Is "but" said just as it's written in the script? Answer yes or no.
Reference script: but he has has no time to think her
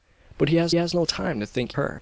yes